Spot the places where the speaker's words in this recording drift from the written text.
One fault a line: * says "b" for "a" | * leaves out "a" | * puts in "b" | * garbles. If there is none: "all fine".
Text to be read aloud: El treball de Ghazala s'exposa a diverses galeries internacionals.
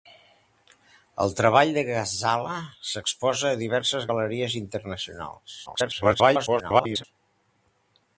* garbles